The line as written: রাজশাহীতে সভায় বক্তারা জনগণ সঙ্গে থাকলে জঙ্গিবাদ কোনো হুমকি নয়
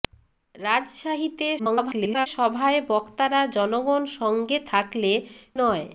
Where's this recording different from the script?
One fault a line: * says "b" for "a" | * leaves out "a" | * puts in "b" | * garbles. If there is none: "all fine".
* garbles
* leaves out "জঙ্গিবাদ কোনো হুমকি"